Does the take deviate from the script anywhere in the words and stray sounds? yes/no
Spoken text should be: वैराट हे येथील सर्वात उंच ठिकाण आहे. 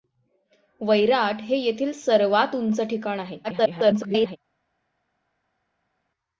yes